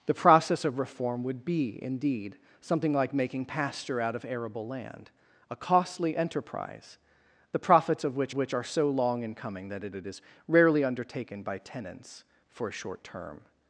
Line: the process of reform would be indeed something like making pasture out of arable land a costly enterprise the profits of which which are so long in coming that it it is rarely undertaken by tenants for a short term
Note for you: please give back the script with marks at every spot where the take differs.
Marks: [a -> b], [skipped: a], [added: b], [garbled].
the process of reform would be indeed something like making pasture out of arable land a costly enterprise the profits of which which are so long in coming that it it is rarely undertaken by tenants for a short term